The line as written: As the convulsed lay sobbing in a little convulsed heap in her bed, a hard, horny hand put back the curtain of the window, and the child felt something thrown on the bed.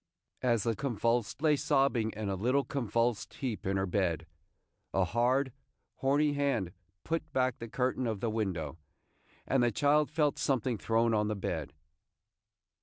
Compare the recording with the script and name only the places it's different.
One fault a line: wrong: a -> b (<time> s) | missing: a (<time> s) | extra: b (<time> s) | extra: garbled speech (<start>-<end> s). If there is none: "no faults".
no faults